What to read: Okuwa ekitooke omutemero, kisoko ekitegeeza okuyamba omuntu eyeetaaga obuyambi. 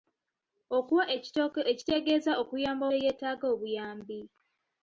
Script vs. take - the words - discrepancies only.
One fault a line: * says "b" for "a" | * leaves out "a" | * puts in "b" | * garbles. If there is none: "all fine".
* leaves out "omutemero kisoko"
* leaves out "omuntu"